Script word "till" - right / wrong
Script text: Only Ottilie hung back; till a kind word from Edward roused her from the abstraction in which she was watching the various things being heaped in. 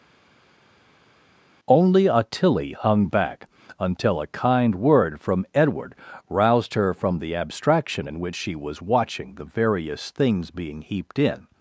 wrong